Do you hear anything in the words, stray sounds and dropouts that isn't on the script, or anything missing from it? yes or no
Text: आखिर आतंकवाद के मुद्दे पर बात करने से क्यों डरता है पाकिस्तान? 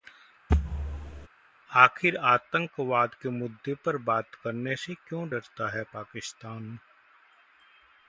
yes